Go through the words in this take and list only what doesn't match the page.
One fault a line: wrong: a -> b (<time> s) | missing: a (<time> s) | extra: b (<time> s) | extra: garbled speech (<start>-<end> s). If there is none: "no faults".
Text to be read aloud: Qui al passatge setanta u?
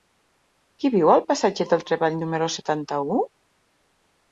extra: viu (0.9 s)
extra: del Treball número (1.8 s)